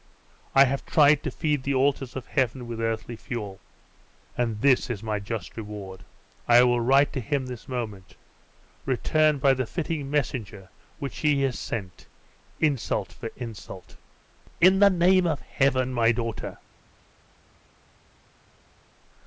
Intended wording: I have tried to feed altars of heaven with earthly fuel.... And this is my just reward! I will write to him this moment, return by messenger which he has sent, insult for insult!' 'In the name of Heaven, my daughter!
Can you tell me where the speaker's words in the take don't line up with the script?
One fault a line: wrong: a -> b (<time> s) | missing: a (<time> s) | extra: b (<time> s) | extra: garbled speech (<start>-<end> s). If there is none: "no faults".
extra: the (1.6 s)
extra: the fitting (9.5 s)